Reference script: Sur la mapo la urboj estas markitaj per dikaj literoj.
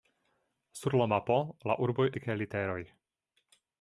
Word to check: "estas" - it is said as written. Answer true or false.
false